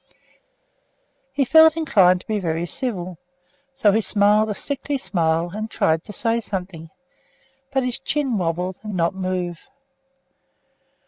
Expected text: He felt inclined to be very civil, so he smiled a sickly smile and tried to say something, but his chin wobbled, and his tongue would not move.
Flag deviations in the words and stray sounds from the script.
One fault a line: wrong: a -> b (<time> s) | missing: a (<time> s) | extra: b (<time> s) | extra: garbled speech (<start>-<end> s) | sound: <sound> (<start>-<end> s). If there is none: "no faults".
missing: his tongue would (8.9 s)